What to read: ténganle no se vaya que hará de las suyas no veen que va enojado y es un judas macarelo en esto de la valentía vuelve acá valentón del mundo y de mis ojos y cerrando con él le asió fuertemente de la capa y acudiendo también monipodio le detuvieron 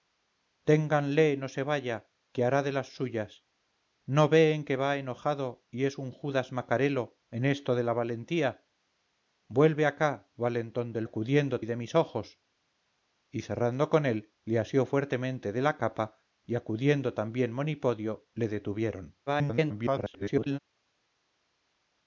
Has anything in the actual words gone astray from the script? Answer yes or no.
yes